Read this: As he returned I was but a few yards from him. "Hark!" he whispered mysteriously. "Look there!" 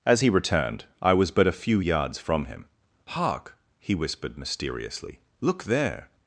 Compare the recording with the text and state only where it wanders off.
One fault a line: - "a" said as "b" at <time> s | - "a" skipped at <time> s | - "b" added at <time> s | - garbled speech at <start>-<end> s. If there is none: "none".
none